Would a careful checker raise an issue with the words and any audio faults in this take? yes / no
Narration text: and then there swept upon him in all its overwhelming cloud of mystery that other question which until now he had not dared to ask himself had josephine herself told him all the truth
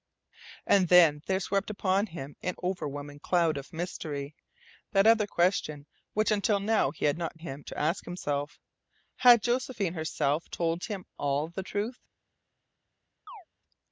yes